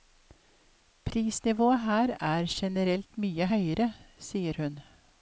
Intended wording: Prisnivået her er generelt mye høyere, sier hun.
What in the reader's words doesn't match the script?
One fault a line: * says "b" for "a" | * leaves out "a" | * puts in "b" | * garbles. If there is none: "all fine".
all fine